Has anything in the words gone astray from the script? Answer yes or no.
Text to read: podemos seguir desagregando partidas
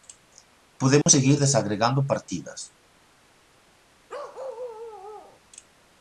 no